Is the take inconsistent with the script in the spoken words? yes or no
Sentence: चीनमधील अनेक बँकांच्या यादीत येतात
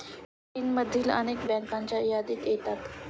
no